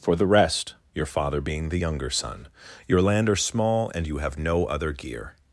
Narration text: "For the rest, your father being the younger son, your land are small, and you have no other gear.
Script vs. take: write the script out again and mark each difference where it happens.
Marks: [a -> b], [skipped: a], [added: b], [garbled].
"For the rest, your father being the younger son, your land are small, and you have no other gear.